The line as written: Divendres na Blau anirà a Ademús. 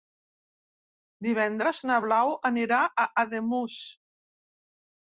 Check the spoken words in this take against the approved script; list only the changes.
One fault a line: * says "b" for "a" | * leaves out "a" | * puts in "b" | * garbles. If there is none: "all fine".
all fine